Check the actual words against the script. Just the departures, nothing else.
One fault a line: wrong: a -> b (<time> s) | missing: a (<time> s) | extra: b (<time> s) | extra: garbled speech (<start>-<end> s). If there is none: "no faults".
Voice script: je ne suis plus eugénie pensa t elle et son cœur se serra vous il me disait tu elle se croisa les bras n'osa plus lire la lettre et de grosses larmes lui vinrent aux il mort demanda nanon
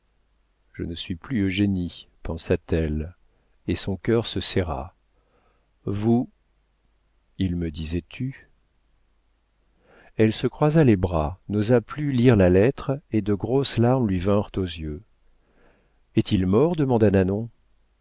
extra: yeux est (14.6 s)